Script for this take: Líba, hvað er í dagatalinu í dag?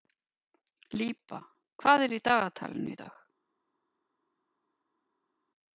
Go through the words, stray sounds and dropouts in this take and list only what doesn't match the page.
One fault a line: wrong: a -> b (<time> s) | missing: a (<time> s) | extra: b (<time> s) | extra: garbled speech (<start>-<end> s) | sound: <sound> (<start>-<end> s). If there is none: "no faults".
no faults